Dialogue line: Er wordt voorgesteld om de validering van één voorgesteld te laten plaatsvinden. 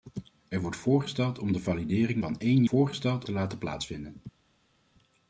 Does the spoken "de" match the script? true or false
true